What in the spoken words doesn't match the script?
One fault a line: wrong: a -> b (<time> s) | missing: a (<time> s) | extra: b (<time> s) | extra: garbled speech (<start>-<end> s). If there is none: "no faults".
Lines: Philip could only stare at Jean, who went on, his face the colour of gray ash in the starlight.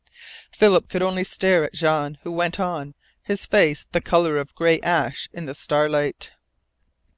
no faults